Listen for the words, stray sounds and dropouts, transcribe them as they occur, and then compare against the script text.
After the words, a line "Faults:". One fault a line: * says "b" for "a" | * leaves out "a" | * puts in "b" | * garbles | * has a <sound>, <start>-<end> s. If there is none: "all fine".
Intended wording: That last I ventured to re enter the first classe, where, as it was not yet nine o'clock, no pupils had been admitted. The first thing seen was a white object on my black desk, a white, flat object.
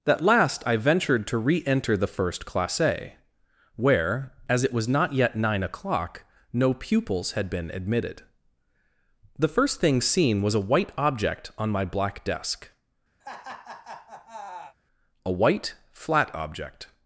That last I ventured to re enter the first classe, where, as it was not yet nine o'clock, no pupils had been admitted. The first thing seen was a white object on my black desk, a white, flat object.
Faults:
* has a laugh, 13.2-14.8 s